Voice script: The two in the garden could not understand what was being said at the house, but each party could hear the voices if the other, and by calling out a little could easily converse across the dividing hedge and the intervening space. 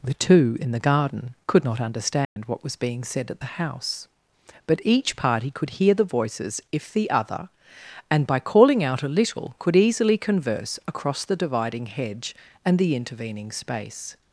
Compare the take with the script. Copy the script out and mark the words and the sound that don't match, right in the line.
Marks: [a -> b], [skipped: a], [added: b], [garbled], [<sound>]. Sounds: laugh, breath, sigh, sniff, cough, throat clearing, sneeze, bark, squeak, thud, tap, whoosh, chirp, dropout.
The two in the garden could not understand [dropout] what was being said at the house, but each party could hear the voices if the other, and by calling out a little could easily converse across the dividing hedge and the intervening space.